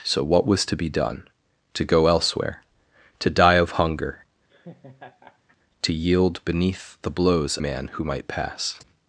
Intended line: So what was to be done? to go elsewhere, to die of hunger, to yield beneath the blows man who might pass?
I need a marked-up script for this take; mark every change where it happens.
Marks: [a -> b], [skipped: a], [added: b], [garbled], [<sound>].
So what was to be done? to go elsewhere, to die of hunger, [laugh] to yield beneath the blows man who might pass?